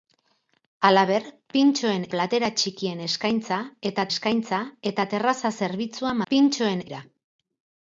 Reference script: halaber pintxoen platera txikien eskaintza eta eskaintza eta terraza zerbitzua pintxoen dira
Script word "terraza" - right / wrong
right